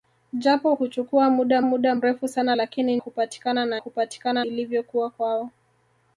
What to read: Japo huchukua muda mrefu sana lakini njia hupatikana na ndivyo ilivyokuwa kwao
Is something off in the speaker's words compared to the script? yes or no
yes